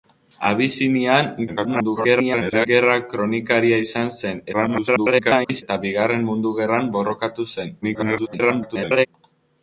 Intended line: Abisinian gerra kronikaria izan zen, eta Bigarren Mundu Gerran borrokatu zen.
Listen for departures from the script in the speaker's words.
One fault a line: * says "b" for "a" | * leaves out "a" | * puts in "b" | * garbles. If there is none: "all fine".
* garbles
* garbles
* garbles